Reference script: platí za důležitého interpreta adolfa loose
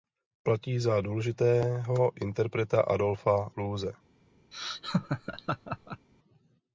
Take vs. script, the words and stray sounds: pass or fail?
fail